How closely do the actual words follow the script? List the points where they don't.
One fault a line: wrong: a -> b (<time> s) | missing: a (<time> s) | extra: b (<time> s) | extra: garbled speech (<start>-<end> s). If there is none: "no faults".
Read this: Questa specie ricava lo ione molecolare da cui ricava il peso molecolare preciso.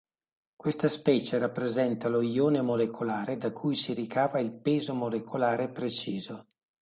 wrong: ricava -> rappresenta (1.4 s)
extra: si (3.8 s)